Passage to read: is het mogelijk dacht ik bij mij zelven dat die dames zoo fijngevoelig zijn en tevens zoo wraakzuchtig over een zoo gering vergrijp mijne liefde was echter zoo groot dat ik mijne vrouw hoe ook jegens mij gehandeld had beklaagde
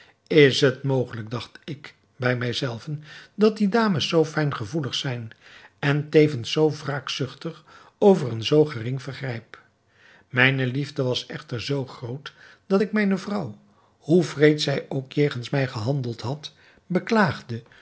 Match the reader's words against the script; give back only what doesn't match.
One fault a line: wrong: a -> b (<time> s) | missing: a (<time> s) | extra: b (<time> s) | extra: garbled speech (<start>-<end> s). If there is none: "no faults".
extra: wreed zij (14.2 s)